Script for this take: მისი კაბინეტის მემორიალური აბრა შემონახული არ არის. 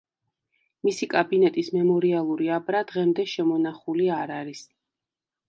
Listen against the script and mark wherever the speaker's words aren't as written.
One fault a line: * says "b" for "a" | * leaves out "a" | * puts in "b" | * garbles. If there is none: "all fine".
* puts in "დღემდე"